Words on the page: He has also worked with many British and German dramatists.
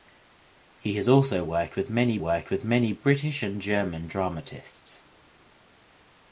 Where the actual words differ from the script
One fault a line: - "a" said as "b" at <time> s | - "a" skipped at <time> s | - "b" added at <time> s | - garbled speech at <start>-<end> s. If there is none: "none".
- "worked with many" added at 2.2 s